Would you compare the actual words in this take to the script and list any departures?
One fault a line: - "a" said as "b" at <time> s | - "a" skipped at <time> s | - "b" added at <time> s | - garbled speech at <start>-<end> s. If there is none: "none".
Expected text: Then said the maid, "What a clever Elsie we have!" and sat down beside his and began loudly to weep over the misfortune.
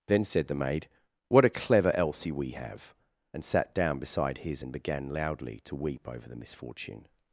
none